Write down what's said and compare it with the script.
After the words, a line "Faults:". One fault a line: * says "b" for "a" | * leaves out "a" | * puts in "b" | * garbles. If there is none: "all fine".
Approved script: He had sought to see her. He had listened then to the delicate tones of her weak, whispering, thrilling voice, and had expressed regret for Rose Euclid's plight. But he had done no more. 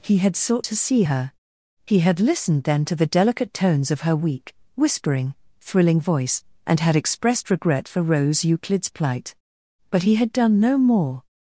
He had sought to see her. He had listened then to the delicate tones of her weak, whispering, thrilling voice, and had expressed regret for Rose Euclid's plight. But he had done no more.
Faults:
all fine